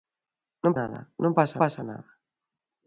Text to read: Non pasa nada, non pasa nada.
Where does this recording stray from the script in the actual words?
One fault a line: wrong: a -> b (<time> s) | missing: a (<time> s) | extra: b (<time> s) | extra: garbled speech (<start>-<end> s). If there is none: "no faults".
missing: pasa (0.7 s)
extra: pasa (1.6 s)